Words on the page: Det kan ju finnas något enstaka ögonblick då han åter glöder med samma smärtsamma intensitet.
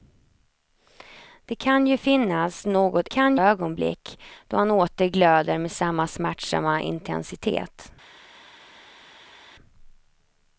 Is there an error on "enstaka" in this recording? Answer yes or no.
yes